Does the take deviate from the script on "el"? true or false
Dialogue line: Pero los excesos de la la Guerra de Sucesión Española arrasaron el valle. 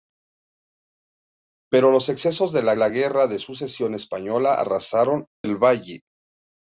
false